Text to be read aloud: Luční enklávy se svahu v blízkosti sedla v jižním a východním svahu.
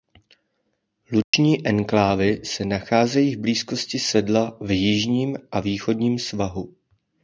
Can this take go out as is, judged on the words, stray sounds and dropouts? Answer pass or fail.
fail